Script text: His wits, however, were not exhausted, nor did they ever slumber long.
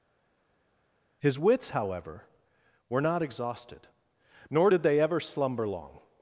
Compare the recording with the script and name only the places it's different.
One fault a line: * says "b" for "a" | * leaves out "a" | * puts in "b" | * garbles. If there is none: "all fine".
all fine